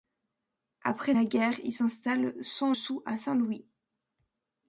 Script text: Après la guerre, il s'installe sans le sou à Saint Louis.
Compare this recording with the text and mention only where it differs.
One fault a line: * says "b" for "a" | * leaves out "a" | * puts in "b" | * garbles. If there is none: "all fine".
* leaves out "le"